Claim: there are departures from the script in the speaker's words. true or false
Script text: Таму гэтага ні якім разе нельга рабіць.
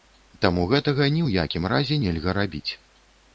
true